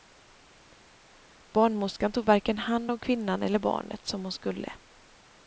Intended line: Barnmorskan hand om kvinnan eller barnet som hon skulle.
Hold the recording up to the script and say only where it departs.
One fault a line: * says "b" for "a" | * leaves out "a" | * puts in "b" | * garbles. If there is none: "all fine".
* puts in "tog varken"